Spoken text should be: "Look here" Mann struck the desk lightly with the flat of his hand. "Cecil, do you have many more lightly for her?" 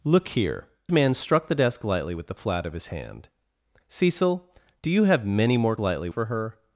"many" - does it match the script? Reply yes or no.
yes